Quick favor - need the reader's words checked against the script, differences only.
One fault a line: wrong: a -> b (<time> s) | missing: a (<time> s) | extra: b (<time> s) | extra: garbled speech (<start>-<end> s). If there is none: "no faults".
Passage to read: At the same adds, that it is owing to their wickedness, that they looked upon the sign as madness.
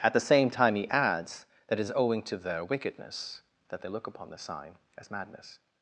extra: time he (0.5 s)
wrong: looked -> look (3.9 s)